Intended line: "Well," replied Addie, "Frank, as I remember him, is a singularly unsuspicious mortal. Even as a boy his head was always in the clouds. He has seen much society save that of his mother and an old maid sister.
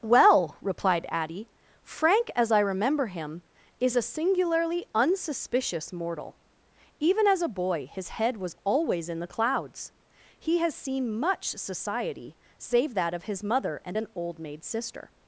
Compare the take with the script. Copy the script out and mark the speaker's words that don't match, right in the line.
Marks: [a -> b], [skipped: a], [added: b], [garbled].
"Well," replied Addie, "Frank, as I remember him, is a singularly unsuspicious mortal. Even as a boy his head was always in the clouds. He has seen much society save that of his mother and an old maid sister.